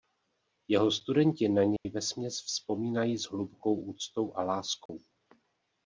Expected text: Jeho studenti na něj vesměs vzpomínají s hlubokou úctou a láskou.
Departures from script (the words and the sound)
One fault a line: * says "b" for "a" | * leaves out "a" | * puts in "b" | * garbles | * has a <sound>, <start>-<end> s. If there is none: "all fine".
* has a dropout, 1.8-1.9 s
* has a dropout, 4.9-4.9 s